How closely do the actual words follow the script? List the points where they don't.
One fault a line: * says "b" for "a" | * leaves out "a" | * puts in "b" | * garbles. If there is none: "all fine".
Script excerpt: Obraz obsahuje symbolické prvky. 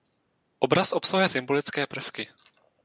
all fine